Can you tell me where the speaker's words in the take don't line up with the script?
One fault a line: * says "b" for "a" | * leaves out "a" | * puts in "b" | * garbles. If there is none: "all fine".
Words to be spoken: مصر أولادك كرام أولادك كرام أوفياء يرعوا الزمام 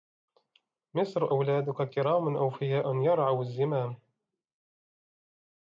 * leaves out "أولادك كرام"